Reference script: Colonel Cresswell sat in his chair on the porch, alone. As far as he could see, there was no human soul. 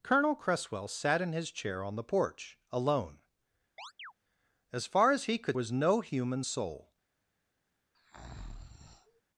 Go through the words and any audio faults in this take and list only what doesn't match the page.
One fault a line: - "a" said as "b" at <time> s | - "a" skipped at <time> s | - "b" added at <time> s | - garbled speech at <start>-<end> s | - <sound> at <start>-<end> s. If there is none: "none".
- chirp at 3.8-4.1 s
- "see there" skipped at 5.6 s
- breath at 7.9-9.2 s